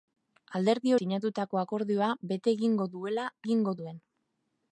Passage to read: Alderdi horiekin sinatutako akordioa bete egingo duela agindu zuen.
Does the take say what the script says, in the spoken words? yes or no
no